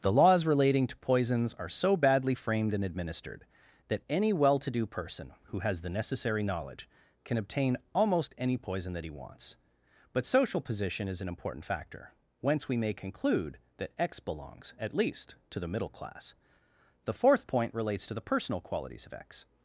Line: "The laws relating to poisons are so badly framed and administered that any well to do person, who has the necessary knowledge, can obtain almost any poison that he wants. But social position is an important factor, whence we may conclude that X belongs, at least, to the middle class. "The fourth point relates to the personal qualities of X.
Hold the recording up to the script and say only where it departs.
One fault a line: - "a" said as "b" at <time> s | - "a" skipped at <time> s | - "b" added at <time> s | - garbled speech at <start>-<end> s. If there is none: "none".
none